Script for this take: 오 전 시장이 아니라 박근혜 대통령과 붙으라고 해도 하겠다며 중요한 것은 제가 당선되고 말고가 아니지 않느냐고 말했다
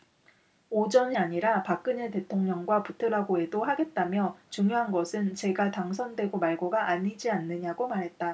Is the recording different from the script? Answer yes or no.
yes